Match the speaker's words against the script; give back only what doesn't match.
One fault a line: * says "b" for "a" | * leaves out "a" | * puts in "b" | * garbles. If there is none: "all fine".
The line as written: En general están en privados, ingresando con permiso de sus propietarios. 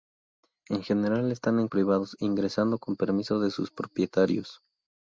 all fine